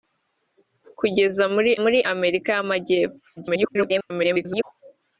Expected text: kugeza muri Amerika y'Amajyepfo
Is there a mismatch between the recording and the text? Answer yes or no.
yes